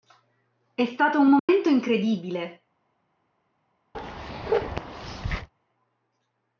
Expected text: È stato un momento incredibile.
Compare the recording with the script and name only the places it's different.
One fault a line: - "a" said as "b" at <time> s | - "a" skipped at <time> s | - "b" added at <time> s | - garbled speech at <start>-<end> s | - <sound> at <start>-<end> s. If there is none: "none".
- dropout at 1.4-1.5 s
- bark at 3.9-5.5 s